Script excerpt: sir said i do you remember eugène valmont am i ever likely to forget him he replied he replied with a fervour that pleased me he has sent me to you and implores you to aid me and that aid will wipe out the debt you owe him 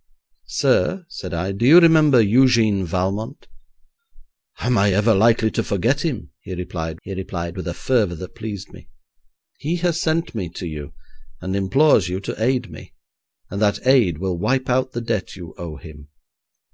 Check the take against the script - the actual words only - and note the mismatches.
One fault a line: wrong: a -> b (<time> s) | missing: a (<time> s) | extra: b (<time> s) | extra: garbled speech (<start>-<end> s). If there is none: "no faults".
no faults